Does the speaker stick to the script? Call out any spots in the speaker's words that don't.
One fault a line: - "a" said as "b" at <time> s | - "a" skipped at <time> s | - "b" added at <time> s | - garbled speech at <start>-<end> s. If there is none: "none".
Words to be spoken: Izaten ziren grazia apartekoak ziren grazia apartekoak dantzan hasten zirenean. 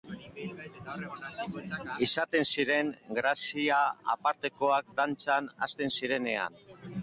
- "ziren grazia apartekoak" skipped at 4.9 s